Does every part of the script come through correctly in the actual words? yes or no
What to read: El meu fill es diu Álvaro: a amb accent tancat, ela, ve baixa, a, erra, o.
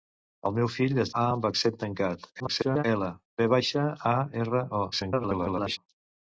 no